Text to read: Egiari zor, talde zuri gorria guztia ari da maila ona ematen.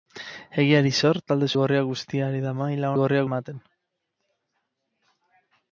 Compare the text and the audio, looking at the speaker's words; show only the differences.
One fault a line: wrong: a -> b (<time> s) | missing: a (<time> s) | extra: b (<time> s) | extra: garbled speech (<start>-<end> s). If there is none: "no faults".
missing: zuri (1.5 s)
wrong: ona -> gorria (3.0 s)